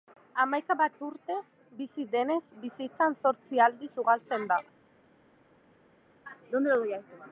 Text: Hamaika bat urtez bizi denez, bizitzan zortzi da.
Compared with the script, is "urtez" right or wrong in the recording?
right